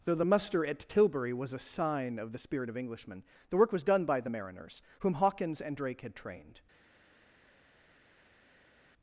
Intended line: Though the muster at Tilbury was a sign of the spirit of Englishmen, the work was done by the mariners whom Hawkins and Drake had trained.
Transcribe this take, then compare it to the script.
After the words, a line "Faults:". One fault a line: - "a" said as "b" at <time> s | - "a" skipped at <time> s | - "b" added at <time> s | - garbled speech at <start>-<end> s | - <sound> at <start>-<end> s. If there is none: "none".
Though the muster at Tilbury was a sign of the spirit of Englishmen, the work was done by the mariners whom Hawkins and Drake had trained.
Faults:
none